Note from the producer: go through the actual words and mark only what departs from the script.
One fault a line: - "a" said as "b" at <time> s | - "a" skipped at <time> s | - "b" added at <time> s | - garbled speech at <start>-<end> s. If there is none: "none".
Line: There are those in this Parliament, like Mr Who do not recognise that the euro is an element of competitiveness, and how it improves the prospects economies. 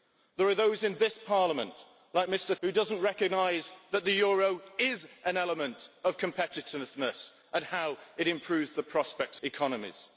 none